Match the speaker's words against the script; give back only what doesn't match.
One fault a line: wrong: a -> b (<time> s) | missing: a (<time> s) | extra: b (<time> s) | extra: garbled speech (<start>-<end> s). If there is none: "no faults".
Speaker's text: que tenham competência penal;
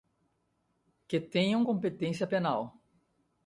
no faults